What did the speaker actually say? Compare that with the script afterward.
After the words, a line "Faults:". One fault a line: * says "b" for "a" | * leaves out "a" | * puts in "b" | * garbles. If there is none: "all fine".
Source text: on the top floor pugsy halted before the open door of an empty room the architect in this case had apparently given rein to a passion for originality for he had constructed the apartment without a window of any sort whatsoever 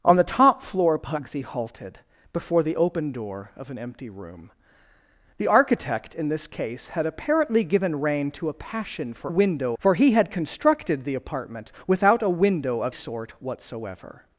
on the top floor pugsy halted before the open door of an empty room the architect in this case had apparently given rein to a passion for window for he had constructed the apartment without a window of sort whatsoever
Faults:
* says "window" for "originality"
* leaves out "any"